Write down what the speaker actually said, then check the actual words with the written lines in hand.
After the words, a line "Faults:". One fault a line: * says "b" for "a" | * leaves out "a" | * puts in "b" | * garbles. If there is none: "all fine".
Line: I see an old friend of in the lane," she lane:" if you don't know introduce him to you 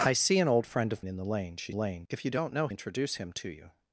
I see an old friend of in the lane," she lane:" if you don't know introduce him to you
Faults:
all fine